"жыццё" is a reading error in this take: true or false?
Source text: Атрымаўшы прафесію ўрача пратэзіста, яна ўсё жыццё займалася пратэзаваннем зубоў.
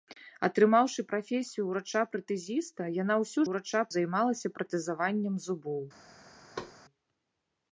true